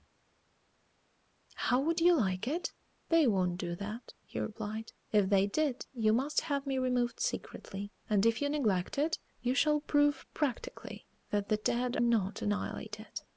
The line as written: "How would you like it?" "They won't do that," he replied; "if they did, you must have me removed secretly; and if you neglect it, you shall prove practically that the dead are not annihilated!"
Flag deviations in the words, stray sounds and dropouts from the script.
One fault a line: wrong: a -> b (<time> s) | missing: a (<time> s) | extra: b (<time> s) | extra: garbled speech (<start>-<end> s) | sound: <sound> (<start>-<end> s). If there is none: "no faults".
missing: are (12.0 s)